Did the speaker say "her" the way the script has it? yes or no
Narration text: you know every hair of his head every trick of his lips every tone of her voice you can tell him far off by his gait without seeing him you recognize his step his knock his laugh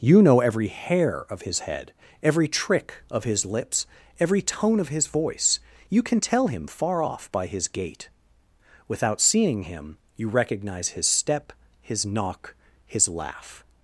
no